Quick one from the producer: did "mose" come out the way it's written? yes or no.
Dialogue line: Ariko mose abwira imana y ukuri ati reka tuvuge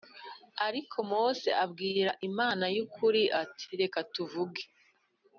yes